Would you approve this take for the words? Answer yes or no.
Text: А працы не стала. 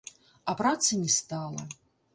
yes